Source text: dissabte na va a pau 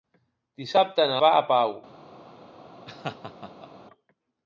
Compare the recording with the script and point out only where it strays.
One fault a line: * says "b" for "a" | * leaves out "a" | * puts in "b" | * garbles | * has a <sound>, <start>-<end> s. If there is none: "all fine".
* has a laugh, 2.9-3.7 s